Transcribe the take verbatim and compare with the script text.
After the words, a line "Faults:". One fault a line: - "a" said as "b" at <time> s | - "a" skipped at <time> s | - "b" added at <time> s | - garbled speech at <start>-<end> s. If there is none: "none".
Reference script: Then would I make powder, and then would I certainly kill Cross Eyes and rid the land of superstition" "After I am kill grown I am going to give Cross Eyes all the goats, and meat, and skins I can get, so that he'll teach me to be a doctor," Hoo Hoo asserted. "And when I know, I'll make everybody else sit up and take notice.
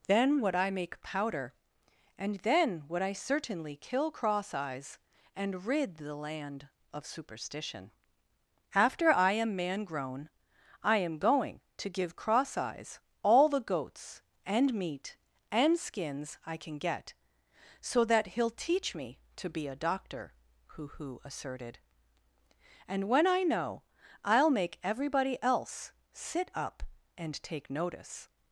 Then would I make powder, and then would I certainly kill Cross Eyes and rid the land of superstition" "After I am man grown I am going to give Cross Eyes all the goats, and meat, and skins I can get, so that he'll teach me to be a doctor," Hoo Hoo asserted. "And when I know, I'll make everybody else sit up and take notice.
Faults:
- "kill" said as "man" at 9.6 s